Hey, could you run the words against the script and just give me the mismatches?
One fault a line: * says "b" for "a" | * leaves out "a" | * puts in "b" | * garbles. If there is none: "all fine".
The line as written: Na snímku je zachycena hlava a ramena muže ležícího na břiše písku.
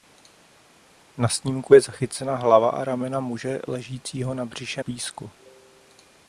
all fine